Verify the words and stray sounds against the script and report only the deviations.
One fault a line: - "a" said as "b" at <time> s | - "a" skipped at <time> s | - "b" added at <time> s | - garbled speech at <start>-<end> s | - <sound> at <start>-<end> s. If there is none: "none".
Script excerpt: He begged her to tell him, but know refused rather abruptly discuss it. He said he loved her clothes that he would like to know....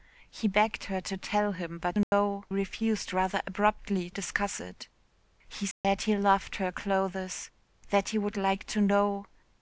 - dropout at 2.0-2.1 s
- dropout at 5.7-5.8 s